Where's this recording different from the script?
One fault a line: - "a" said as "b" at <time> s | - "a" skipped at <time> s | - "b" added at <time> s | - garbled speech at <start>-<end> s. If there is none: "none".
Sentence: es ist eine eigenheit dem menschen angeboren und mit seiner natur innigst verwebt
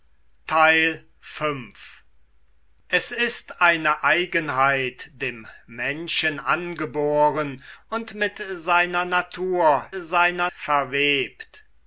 - "innigst" said as "seiner" at 10.0 s